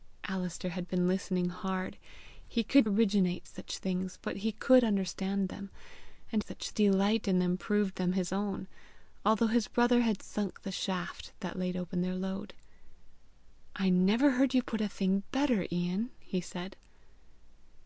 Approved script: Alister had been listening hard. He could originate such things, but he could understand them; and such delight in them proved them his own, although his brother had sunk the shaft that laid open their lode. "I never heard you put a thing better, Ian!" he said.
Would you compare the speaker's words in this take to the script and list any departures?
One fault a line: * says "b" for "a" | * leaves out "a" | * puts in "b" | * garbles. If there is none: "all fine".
all fine